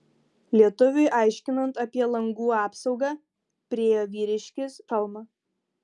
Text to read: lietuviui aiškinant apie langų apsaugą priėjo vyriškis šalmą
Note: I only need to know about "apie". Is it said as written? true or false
true